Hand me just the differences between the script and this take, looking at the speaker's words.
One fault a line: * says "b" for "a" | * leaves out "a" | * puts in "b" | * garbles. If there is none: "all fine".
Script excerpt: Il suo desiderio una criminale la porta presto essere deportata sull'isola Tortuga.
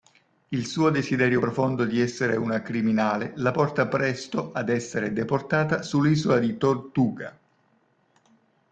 * puts in "profondo di essere"
* puts in "ad"
* puts in "di"